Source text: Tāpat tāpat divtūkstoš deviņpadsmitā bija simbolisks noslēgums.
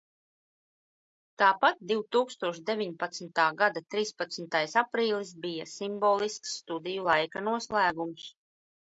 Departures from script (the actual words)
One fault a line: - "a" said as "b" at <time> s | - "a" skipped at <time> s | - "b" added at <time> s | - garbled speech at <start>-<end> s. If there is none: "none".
- "tāpat" skipped at 1.8 s
- "gada trīspadsmitais aprīlis" added at 3.6 s
- "studiju laika" added at 6.6 s